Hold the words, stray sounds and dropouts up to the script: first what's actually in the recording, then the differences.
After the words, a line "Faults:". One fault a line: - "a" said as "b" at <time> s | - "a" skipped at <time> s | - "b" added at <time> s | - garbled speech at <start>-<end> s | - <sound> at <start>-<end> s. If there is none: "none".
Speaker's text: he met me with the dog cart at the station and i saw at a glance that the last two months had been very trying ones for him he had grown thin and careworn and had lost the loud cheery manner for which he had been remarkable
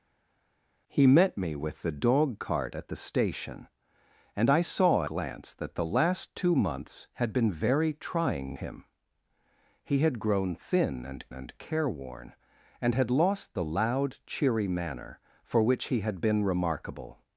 he met me with the dog cart at the station and i saw glance that the last two months had been very trying him he had grown thin and and careworn and had lost the loud cheery manner for which he had been remarkable
Faults:
- "at a" skipped at 5.0 s
- "ones for" skipped at 8.6 s
- "and" added at 11.3 s